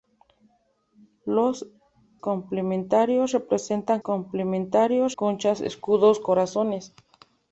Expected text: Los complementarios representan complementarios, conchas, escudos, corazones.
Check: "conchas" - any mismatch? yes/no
no